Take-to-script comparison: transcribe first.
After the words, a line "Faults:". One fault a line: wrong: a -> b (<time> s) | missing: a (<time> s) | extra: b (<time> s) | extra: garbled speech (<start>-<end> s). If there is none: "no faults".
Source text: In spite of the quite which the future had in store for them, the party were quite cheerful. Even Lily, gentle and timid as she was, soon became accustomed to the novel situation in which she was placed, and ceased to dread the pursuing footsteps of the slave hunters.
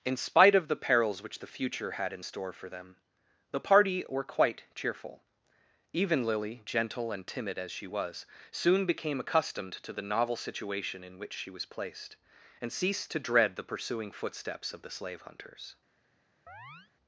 In spite of the perils which the future had in store for them, the party were quite cheerful. Even Lily, gentle and timid as she was, soon became accustomed to the novel situation in which she was placed, and ceased to dread the pursuing footsteps of the slave hunters.
Faults:
wrong: quite -> perils (0.8 s)